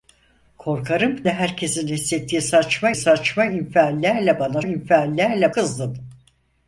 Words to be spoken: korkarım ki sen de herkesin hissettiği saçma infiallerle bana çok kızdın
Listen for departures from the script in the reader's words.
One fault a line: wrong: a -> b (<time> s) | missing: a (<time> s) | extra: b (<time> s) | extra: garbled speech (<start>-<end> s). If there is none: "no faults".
missing: ki sen (1.2 s)
extra: saçma (2.9 s)
wrong: çok -> infiallerle (4.6 s)